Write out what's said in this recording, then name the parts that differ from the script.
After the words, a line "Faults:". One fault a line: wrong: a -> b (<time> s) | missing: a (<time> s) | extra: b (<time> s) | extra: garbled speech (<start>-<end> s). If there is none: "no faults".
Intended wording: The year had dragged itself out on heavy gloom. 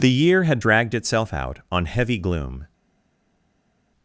The year had dragged itself out on heavy gloom.
Faults:
no faults